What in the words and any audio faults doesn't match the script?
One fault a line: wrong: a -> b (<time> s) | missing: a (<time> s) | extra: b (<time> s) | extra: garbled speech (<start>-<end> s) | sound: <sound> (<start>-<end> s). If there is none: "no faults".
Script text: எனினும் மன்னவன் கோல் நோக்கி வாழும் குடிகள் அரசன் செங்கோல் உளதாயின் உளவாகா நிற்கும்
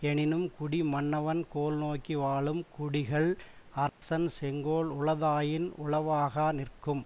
extra: குடி (0.5 s)
sound: dropout (3.9-4.0 s)